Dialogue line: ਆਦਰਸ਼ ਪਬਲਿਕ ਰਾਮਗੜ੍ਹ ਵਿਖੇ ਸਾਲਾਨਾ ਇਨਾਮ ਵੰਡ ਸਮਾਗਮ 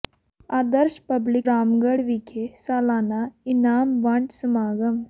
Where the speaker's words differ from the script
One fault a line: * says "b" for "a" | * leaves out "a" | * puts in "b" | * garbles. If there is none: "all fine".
all fine